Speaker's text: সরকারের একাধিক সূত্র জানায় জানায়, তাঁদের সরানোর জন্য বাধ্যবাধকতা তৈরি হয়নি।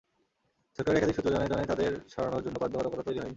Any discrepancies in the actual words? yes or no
no